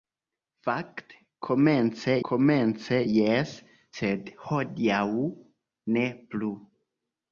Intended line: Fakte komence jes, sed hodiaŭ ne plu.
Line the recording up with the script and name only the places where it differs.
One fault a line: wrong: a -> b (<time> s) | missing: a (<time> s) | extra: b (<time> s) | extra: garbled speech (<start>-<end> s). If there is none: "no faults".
extra: komence (2.3 s)